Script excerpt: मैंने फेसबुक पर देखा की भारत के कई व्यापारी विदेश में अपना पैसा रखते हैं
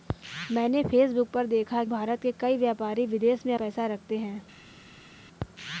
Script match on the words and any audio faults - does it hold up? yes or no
no